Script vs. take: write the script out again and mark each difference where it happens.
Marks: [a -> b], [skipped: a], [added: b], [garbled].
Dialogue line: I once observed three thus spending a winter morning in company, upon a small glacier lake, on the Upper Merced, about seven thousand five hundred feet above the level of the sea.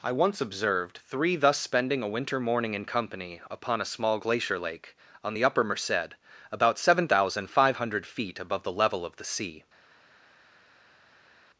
I once observed three thus spending a winter morning in company, upon a small glacier lake, on the Upper Merced, about seven thousand five hundred feet above the level of the sea.